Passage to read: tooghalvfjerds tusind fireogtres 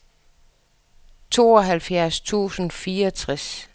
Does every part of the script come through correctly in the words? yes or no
yes